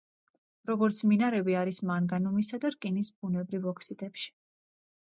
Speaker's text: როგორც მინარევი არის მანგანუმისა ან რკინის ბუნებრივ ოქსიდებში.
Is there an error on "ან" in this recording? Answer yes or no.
yes